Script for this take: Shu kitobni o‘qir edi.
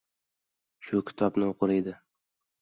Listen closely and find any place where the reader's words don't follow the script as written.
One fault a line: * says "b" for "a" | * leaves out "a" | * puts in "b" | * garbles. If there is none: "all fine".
all fine